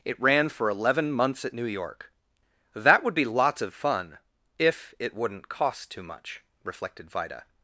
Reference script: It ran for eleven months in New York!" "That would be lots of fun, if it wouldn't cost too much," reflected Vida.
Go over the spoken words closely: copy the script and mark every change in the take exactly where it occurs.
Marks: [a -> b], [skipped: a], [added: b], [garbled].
It ran for eleven months [in -> at] New York!" "That would be lots of fun, if it wouldn't cost too much," reflected Vida.